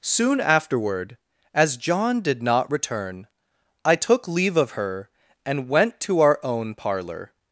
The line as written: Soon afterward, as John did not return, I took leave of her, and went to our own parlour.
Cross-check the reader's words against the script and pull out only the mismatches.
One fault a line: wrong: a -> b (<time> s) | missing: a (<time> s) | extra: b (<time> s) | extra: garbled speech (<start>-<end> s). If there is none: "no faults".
no faults